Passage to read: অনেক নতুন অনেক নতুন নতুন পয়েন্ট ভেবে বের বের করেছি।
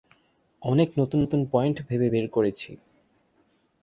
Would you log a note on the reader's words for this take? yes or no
yes